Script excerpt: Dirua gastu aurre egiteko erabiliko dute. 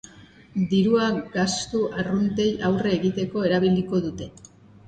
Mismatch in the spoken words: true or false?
true